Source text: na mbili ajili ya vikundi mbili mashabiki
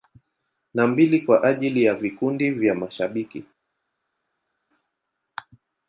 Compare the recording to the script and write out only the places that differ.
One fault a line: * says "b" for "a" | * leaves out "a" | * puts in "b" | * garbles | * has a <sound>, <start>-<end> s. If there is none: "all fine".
* puts in "kwa"
* says "vya" for "mbili"